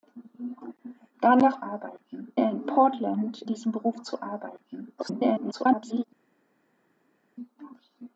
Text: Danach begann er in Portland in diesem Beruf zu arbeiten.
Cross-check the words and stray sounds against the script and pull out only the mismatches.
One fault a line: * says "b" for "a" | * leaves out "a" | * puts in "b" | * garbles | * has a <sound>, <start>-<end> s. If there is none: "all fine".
* says "arbeiten" for "begann"
* leaves out "in"
* garbles